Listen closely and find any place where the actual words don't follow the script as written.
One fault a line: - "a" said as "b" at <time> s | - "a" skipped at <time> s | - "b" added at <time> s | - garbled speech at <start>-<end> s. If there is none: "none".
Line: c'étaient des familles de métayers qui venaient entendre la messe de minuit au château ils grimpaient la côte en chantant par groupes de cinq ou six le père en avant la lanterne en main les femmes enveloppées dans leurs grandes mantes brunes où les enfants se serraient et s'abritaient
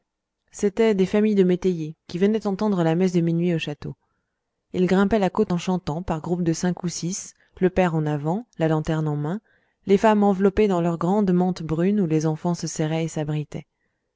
none